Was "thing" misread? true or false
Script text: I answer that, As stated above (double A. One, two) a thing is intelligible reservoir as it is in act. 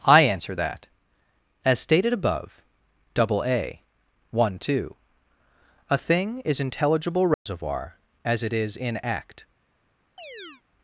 false